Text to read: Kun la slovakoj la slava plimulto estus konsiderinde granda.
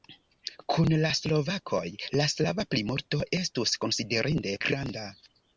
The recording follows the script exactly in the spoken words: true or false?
true